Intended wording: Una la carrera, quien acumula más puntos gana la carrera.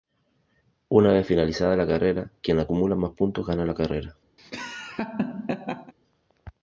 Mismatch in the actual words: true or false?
true